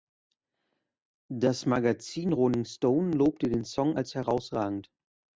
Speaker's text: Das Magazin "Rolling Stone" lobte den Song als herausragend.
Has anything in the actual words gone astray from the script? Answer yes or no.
no